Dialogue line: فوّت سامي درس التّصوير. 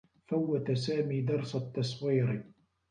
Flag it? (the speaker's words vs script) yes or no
no